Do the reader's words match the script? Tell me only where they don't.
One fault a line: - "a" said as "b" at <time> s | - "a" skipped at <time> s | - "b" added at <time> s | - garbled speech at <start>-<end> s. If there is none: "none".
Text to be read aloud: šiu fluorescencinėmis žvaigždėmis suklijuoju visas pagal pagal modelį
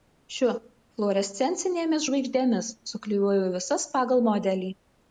- "pagal" skipped at 4.3 s